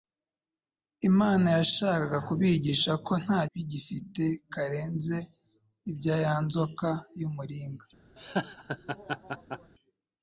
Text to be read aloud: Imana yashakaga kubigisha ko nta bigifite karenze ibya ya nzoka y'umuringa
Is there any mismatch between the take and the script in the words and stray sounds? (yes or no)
yes